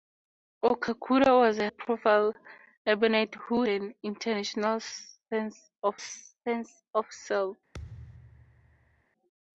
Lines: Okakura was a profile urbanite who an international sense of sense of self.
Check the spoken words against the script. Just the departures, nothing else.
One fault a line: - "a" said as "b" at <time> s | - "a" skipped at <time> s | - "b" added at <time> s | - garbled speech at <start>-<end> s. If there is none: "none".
none